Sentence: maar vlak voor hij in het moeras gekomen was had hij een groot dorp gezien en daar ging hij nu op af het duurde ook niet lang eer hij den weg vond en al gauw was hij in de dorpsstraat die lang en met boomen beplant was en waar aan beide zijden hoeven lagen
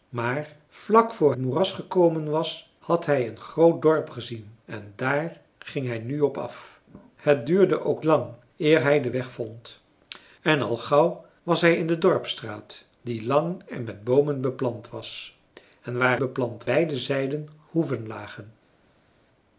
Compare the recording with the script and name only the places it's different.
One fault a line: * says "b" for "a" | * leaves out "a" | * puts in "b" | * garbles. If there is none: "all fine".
* leaves out "hij in het"
* leaves out "niet"
* says "beplant" for "aan"